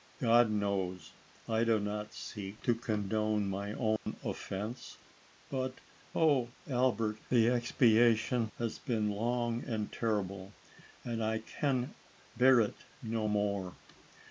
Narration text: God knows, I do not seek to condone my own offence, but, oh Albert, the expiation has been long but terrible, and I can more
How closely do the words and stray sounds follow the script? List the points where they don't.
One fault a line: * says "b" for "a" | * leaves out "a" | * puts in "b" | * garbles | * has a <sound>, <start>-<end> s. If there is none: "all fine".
* has a dropout, 4.0-4.1 s
* says "and" for "but"
* puts in "bear it no"